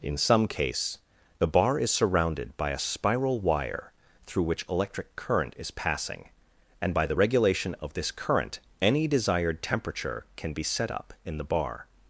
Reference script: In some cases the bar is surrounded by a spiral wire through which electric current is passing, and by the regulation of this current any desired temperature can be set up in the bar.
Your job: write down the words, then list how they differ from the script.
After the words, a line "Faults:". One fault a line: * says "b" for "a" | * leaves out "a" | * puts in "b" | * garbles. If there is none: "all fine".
In some case the bar is surrounded by a spiral wire through which electric current is passing, and by the regulation of this current any desired temperature can be set up in the bar.
Faults:
* says "case" for "cases"